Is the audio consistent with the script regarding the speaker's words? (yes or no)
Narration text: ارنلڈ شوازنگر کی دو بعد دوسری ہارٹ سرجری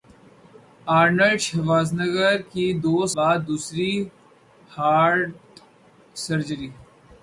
yes